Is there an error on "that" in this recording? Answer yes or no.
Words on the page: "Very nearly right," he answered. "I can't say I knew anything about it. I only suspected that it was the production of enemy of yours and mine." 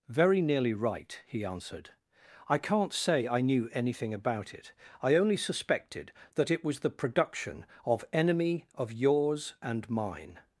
no